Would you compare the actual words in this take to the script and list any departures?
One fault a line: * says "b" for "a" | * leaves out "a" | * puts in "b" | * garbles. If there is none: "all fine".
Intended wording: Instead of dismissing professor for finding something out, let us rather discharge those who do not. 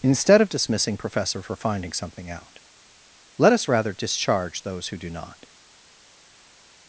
all fine